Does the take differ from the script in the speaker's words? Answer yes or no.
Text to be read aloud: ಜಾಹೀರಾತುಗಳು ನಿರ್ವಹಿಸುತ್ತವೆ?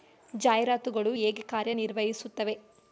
yes